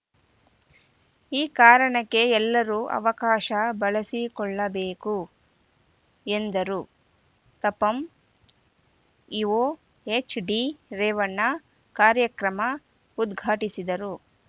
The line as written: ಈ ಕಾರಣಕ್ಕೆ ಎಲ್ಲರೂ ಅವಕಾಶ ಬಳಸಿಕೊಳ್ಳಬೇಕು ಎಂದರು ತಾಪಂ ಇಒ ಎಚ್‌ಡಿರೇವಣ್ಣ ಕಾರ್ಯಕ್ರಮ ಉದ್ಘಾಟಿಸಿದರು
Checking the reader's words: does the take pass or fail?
pass